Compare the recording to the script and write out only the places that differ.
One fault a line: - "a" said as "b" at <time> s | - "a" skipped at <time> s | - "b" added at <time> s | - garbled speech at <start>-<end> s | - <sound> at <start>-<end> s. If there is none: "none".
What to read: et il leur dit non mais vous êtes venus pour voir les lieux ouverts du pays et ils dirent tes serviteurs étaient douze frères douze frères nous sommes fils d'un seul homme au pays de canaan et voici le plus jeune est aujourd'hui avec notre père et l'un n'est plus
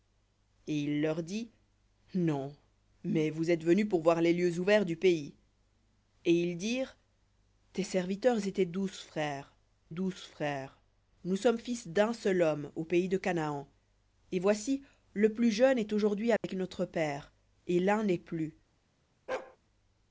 - dropout at 16.4-16.4 s
- bark at 19.3-19.6 s